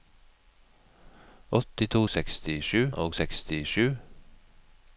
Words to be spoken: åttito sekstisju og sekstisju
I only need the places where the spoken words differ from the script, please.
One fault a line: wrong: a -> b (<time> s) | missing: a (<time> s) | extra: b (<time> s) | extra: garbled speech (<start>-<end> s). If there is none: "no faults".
no faults